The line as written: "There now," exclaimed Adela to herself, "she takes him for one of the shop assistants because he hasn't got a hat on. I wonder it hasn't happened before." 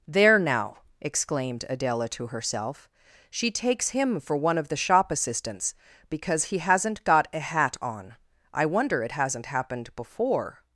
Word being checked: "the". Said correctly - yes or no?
yes